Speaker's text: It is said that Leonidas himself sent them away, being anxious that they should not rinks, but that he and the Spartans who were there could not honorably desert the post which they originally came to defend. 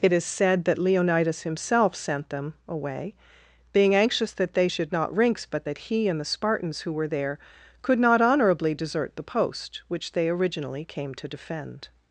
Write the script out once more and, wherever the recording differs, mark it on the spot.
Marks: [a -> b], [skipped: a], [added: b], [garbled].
It is said that Leonidas himself sent them away, being anxious that they should not rinks, but that he and the Spartans who were there could not honorably desert the post which they originally came to defend.